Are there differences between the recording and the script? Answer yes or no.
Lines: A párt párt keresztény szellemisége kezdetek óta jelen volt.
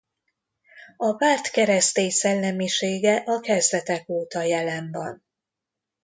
yes